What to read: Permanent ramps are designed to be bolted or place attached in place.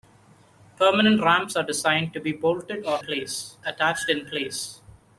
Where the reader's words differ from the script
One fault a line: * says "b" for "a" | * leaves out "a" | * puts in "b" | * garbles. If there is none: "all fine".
all fine